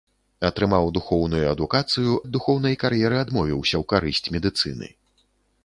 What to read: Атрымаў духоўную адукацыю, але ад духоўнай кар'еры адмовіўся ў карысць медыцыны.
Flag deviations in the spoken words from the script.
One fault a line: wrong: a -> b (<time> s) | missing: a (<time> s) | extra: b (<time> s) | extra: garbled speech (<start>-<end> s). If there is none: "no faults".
missing: але (2.1 s)